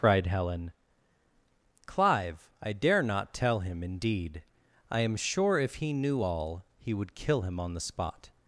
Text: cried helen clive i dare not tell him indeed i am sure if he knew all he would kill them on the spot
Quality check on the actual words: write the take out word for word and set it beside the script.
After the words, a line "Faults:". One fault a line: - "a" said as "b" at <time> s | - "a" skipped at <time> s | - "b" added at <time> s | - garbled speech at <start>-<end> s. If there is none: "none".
cried helen clive i dare not tell him indeed i am sure if he knew all he would kill him on the spot
Faults:
- "them" said as "him" at 7.4 s